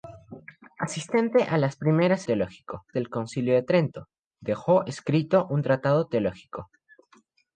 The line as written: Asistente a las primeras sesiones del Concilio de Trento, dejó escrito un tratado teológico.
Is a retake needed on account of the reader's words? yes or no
yes